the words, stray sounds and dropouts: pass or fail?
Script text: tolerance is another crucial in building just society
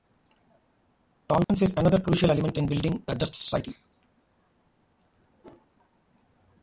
fail